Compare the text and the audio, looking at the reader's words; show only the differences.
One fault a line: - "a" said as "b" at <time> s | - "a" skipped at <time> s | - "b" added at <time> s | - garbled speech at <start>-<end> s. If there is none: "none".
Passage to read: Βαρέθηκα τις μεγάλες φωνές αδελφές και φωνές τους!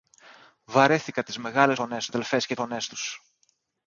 none